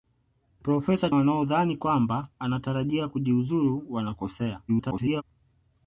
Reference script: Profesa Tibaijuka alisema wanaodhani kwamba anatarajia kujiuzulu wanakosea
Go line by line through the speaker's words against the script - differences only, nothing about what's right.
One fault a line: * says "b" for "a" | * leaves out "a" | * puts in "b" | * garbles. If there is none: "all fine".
* leaves out "Tibaijuka alisema"
* garbles